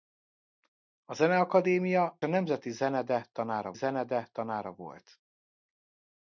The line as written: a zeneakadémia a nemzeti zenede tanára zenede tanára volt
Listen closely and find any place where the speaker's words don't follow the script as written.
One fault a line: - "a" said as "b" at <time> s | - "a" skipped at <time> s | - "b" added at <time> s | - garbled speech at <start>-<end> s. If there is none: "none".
none